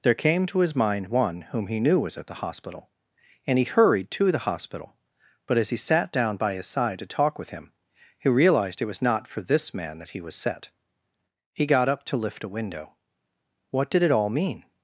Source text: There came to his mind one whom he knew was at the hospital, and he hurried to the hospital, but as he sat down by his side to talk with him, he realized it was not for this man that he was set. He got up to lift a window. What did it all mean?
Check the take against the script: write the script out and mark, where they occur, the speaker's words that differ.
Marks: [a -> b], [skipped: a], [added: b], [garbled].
There came to his mind one whom he knew was at the hospital, and he hurried to the hospital, but as he sat down by his side to talk with him, he realized it was not for this man that he was set. He got up to lift a window. What did it all mean?